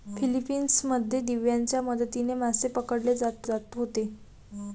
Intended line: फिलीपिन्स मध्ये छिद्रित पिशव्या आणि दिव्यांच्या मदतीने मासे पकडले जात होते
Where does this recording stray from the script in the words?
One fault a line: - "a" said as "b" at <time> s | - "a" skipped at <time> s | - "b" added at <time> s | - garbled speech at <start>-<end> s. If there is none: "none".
- "छिद्रित पिशव्या आणि" skipped at 1.2 s
- "जात" added at 3.4 s